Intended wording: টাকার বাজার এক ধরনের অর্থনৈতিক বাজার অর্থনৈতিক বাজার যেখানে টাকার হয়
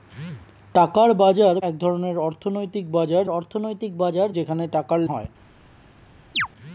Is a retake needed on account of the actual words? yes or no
no